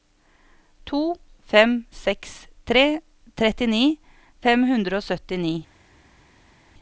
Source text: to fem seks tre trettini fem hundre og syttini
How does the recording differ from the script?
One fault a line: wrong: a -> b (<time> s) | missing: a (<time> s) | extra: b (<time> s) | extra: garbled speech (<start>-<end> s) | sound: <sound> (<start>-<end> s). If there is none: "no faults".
no faults